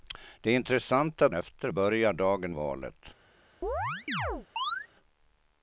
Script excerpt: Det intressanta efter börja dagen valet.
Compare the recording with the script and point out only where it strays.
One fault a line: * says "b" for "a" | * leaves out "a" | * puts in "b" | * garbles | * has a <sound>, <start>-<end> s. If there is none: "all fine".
* has a chirp, 3.6-4.9 s